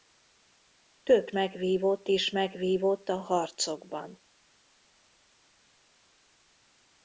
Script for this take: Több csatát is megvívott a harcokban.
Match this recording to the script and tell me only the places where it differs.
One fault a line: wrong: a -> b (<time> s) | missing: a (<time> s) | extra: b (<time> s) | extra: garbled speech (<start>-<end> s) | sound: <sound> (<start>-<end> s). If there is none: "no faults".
wrong: csatát -> megvívott (1.3 s)